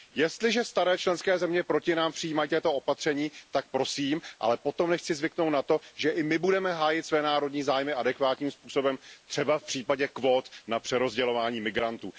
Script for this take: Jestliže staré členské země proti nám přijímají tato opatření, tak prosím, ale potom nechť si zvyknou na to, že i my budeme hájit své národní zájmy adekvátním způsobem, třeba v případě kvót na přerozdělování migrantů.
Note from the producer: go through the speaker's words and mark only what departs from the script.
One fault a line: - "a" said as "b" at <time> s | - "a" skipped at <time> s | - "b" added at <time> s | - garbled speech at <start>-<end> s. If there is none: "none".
none